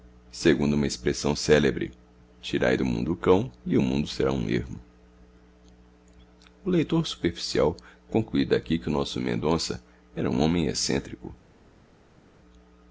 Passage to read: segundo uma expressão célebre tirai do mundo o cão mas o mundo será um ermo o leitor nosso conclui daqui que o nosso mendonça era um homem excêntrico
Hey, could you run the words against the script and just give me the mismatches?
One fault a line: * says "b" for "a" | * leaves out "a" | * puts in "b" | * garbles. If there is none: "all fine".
* says "e" for "mas"
* says "superficial" for "nosso"